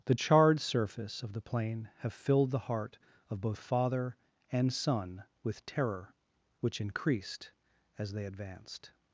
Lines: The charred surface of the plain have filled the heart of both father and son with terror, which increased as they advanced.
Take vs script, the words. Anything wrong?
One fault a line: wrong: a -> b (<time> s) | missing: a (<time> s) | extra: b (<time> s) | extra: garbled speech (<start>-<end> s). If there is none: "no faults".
no faults